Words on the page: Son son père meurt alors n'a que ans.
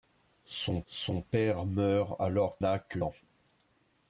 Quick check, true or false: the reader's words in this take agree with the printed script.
true